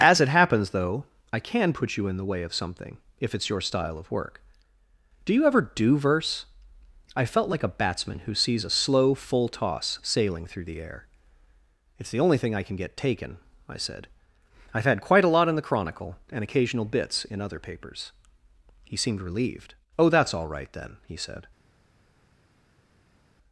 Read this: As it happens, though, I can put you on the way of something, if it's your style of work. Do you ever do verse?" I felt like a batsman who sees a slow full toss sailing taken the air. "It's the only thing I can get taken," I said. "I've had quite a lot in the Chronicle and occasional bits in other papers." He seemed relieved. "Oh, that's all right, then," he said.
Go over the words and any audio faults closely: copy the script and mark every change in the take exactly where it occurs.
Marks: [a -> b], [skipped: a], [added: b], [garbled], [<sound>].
As it happens, though, I can put you [on -> in] the way of something, if it's your style of work. Do you ever do verse?" I felt like a batsman who sees a slow full toss sailing [taken -> through] the air. "It's the only thing I can get taken," I said. "I've had quite a lot in the Chronicle and occasional bits in other papers." He seemed relieved. "Oh, that's all right, then," he said.